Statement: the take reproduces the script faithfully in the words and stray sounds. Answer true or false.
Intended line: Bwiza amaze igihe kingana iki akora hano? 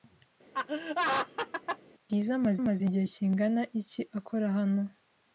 false